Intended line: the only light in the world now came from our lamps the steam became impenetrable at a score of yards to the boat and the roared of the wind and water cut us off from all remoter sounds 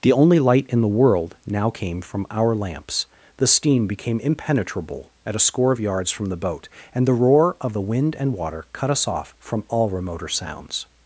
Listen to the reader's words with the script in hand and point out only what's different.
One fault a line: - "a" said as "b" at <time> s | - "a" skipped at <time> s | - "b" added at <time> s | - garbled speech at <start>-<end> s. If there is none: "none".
- "to" said as "from" at 6.1 s
- "roared" said as "roar" at 7.1 s